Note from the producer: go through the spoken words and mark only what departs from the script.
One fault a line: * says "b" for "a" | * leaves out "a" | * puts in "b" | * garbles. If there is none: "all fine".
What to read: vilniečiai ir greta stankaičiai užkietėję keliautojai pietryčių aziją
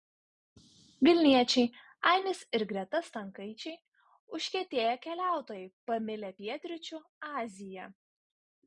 * puts in "ainis"
* puts in "pamilę"